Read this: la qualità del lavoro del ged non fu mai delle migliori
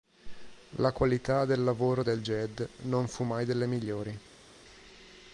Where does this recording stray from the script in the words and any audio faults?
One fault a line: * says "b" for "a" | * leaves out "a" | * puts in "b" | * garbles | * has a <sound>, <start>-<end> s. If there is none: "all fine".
all fine